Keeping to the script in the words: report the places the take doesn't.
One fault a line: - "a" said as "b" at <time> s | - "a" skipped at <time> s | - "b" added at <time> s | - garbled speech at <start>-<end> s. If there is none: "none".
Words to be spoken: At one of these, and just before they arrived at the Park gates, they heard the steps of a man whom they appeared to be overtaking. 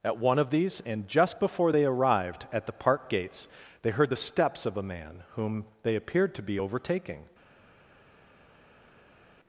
none